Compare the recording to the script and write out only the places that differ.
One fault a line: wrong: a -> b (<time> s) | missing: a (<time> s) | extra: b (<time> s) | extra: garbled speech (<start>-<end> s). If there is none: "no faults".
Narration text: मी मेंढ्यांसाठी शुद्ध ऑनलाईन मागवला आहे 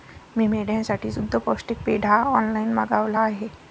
extra: पौष्टिक पेंढा (1.4 s)